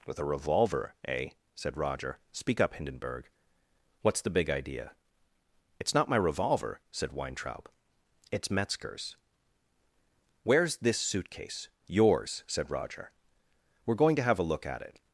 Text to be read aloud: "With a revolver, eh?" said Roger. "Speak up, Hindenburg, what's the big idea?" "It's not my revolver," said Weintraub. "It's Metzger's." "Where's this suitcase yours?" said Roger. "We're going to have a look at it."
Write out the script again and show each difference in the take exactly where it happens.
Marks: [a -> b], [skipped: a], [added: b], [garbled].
"With a revolver, eh?" said Roger. "Speak up, Hindenburg, what's the big idea?" "It's not my revolver," said Weintraub. "It's Metzger's." "Where's this suitcase yours?" said Roger. "We're going to have a look at it."